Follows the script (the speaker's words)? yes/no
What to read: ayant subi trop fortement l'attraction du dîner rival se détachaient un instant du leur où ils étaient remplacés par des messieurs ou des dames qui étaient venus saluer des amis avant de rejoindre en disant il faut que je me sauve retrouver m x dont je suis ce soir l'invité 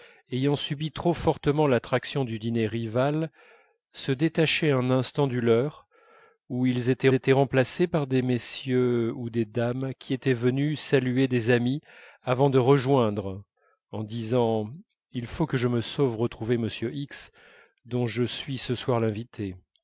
no